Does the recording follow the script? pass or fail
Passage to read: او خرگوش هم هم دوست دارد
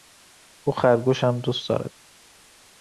fail